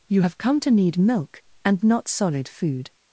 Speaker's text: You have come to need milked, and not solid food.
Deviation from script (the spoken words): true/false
true